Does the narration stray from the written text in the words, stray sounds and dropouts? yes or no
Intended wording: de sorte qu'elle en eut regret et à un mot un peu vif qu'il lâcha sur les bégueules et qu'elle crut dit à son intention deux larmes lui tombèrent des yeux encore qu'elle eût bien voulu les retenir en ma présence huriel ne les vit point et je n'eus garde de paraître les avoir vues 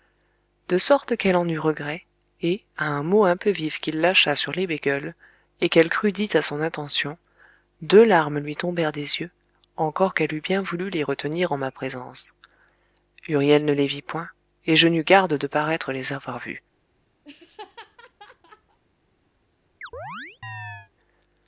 yes